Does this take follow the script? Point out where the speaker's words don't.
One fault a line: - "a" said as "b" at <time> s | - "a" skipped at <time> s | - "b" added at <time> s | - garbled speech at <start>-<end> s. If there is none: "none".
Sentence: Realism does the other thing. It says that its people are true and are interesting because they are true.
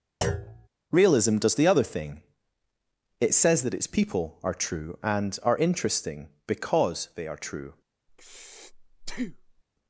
none